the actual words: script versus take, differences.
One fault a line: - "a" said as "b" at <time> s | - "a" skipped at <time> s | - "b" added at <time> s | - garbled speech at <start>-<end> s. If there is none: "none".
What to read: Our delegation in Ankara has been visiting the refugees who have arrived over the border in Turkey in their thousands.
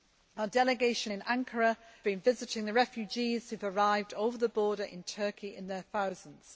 - "has" skipped at 1.8 s